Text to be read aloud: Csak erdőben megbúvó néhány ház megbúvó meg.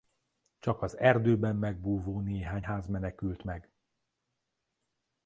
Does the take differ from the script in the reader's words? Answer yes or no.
yes